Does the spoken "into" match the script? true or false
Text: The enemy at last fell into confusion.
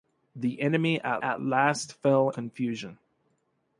false